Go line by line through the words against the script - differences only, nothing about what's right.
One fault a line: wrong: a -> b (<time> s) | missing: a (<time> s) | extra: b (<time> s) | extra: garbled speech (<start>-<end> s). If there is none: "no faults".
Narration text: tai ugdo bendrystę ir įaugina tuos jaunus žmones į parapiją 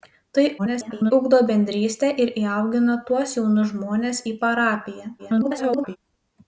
extra: garbled speech (0.6-1.1 s)
extra: garbled speech (5.2-6.0 s)